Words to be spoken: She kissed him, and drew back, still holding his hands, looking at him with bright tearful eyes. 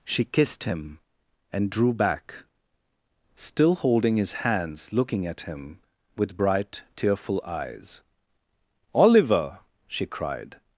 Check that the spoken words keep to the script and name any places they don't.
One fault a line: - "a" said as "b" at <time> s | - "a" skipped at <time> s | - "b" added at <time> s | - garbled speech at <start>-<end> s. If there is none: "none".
- "Oliver she cried" added at 8.9 s